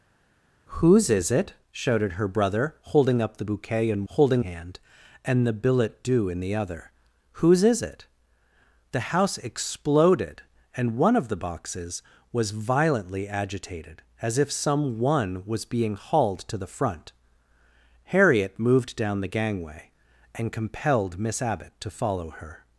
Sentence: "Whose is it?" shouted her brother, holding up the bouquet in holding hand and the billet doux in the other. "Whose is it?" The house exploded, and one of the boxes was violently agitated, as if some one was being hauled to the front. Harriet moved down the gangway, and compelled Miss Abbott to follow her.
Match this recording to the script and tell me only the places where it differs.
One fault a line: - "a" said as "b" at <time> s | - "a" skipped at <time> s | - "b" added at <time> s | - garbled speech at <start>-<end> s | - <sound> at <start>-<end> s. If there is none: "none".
none